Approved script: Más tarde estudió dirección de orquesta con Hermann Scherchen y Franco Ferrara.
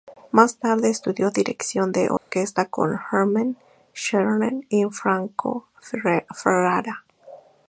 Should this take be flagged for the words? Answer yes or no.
no